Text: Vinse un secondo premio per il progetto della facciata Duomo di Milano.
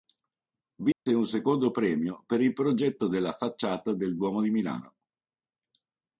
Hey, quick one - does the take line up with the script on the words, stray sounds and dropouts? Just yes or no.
no